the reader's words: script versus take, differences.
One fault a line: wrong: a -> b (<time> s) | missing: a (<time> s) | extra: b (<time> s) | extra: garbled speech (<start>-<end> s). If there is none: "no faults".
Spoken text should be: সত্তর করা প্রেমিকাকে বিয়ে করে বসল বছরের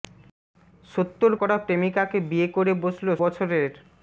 no faults